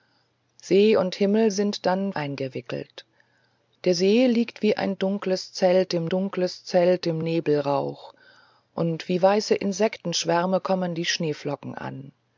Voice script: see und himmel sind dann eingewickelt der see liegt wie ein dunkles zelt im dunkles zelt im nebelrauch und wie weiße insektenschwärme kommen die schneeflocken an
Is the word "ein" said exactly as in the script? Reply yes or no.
yes